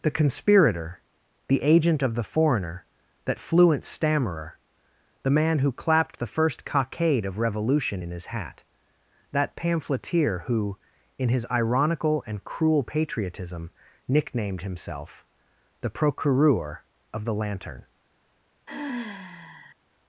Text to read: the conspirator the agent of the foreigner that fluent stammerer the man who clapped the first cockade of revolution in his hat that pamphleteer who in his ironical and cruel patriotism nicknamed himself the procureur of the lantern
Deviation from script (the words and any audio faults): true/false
true